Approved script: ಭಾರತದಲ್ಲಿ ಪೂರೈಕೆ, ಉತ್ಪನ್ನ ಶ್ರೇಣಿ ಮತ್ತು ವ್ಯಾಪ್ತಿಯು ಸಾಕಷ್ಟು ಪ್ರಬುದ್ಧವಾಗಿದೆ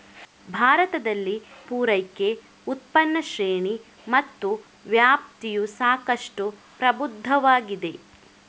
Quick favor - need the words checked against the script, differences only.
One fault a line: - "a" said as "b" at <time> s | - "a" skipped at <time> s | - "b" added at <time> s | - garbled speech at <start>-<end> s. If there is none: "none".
none